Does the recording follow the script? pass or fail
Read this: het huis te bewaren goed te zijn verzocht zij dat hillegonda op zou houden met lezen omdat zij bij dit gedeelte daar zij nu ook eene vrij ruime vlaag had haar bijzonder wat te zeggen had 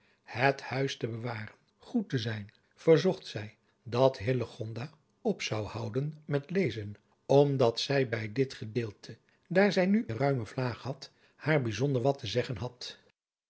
fail